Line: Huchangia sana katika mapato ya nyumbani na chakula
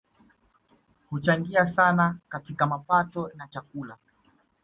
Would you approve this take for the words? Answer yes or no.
no